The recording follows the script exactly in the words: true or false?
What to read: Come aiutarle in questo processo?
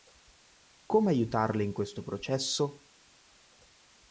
true